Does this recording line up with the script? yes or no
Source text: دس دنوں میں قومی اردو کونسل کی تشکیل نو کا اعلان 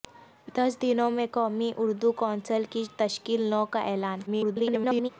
no